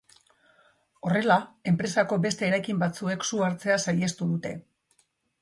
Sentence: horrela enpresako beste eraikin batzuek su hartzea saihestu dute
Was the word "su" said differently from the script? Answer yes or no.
no